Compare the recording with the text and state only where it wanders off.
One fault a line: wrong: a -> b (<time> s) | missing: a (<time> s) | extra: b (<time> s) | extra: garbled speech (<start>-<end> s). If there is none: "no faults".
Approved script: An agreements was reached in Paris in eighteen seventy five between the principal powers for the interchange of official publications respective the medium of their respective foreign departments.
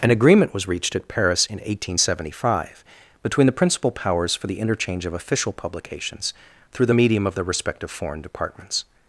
wrong: agreements -> agreement (0.1 s)
wrong: in -> at (0.9 s)
wrong: respective -> through (6.7 s)